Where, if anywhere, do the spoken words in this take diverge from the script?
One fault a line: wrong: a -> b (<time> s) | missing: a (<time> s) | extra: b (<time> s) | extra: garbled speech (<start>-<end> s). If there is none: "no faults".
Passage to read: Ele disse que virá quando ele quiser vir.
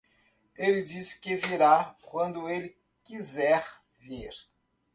no faults